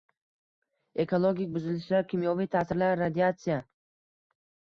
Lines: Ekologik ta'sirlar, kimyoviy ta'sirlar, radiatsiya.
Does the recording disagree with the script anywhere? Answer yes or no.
yes